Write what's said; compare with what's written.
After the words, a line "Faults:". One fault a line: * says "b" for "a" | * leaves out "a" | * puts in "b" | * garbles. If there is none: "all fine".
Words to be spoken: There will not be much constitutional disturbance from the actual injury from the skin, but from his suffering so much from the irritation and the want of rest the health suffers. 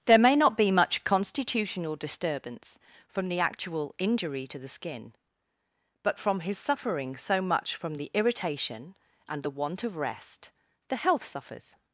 There may not be much constitutional disturbance from the actual injury to the skin, but from his suffering so much from the irritation and the want of rest the health suffers.
Faults:
* says "may" for "will"
* says "to" for "from"